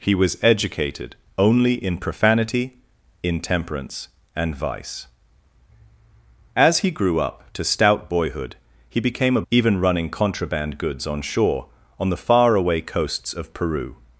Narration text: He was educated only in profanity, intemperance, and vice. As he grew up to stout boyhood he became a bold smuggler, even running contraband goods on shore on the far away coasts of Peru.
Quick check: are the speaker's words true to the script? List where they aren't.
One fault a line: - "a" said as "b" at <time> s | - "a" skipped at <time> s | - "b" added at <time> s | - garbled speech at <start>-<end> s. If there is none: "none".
- "bold smuggler" skipped at 9.4 s